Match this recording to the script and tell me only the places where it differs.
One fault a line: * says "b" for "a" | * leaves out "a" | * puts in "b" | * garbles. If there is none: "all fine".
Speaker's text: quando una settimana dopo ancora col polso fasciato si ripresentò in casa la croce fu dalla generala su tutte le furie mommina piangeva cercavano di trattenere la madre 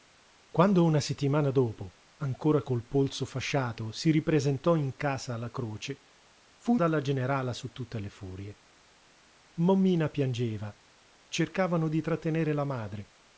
all fine